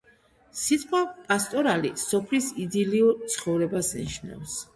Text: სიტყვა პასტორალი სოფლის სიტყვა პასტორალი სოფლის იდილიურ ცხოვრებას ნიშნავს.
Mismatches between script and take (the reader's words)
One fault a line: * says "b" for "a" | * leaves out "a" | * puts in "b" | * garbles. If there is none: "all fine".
* leaves out "სიტყვა პასტორალი სოფლის"